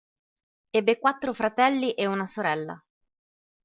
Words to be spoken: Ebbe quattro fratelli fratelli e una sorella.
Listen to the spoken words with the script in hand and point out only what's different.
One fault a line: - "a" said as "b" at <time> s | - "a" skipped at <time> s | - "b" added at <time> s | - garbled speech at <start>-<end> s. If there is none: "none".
- "fratelli" skipped at 1.9 s